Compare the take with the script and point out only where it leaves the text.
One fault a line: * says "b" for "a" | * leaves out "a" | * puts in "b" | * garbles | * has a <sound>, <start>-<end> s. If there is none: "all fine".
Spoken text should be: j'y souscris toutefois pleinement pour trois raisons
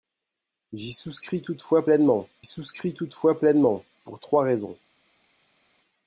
* puts in "souscris toutefois pleinement"